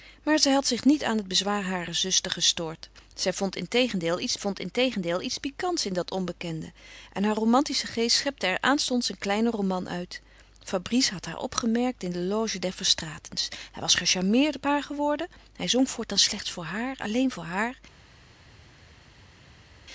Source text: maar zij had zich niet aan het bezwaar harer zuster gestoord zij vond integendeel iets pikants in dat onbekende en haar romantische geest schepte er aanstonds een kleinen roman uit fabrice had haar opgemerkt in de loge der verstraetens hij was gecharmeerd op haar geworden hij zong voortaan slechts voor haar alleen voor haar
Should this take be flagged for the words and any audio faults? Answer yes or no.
yes